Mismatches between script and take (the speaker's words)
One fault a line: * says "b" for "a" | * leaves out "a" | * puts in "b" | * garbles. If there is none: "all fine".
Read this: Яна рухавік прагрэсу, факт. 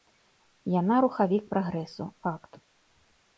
all fine